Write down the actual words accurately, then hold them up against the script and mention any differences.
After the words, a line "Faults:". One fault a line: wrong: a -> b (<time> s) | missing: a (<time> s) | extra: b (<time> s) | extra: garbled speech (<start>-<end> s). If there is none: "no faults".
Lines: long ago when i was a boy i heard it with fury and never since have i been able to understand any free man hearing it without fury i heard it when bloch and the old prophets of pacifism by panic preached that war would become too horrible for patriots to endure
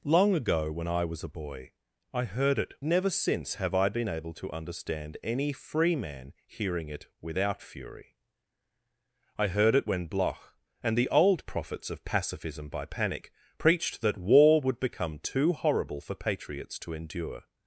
long ago when i was a boy i heard it never since have i been able to understand any free man hearing it without fury i heard it when bloch and the old prophets of pacifism by panic preached that war would become too horrible for patriots to endure
Faults:
missing: with fury and (2.7 s)